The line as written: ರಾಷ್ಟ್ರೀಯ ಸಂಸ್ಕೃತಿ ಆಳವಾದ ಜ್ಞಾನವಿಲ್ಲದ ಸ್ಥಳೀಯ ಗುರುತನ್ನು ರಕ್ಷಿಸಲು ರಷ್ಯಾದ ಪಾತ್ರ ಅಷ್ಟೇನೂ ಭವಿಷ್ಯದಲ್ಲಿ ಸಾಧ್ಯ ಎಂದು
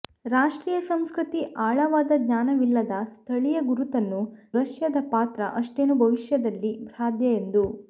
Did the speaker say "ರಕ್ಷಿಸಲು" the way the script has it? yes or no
no